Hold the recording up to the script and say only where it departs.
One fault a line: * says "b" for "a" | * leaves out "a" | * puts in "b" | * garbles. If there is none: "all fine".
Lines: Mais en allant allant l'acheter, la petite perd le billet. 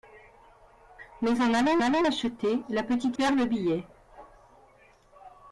all fine